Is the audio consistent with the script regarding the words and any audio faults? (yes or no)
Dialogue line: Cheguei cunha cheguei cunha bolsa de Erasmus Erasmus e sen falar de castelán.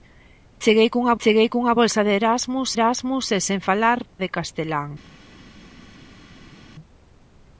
yes